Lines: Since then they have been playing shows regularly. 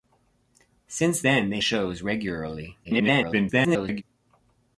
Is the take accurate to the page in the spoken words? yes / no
no